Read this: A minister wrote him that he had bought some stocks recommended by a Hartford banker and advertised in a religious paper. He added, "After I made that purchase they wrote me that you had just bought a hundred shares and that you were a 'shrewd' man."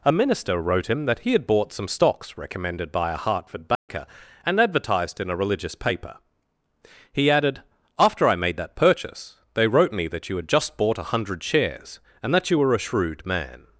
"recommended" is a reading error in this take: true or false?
false